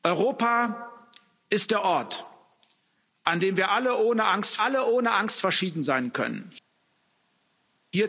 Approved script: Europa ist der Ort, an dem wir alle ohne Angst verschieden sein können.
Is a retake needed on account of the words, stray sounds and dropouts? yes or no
yes